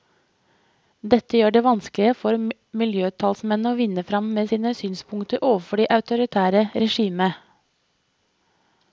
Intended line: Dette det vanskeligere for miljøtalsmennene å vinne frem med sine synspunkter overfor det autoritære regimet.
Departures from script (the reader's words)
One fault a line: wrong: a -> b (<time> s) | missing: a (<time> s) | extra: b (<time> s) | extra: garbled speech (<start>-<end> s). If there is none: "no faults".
extra: gjør (1.4 s)